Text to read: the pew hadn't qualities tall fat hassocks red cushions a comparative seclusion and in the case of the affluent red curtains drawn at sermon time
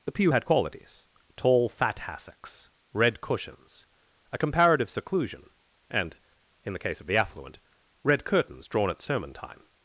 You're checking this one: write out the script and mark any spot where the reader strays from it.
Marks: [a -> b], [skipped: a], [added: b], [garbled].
the pew [hadn't -> had] qualities tall fat hassocks red cushions a comparative seclusion and in the case of the affluent red curtains drawn at sermon time